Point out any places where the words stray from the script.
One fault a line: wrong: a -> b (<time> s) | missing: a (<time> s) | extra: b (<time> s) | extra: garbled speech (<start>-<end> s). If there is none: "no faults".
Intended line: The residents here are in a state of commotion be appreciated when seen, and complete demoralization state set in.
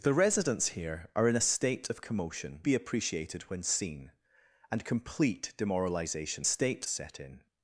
no faults